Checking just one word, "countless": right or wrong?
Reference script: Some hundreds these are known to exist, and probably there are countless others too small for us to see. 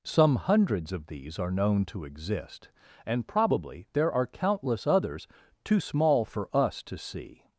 right